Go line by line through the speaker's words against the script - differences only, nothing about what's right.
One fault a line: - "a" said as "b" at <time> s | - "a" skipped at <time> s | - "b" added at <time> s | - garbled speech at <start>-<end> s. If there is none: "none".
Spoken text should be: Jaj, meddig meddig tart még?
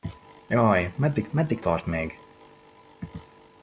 none